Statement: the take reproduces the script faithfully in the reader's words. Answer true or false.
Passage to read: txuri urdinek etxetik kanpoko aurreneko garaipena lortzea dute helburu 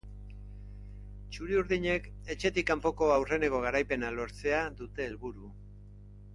true